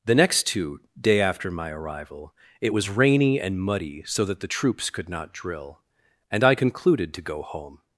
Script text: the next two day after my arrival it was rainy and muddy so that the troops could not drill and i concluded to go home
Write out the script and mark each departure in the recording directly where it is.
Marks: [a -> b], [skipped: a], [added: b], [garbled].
the next two day after my arrival it was rainy and muddy so that the troops could not drill and i concluded to go home